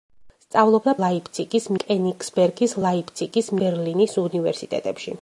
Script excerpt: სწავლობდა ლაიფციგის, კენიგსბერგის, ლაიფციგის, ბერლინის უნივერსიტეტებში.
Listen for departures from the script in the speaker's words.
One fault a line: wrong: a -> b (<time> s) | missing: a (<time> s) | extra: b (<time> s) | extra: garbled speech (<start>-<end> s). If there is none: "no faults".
no faults